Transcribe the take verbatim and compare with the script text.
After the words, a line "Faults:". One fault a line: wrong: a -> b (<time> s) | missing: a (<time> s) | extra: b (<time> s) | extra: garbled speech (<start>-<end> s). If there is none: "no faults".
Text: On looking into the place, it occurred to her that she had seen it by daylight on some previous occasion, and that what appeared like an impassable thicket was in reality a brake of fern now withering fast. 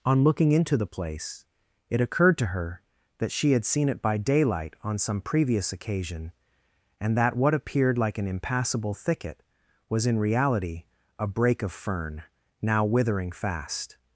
On looking into the place, it occurred to her that she had seen it by daylight on some previous occasion, and that what appeared like an impassable thicket was in reality a brake of fern now withering fast.
Faults:
no faults